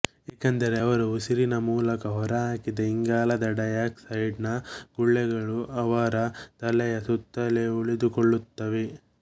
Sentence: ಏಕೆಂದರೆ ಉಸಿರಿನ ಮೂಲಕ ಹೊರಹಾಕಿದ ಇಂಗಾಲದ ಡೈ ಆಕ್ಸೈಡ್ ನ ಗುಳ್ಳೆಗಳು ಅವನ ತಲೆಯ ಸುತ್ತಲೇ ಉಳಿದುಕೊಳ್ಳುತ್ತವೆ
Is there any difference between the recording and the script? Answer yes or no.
yes